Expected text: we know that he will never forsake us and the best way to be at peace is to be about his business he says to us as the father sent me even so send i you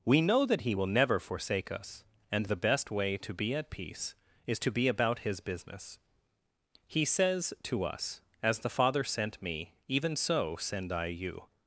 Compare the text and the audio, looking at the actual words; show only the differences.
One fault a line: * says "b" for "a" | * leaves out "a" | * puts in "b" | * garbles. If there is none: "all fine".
all fine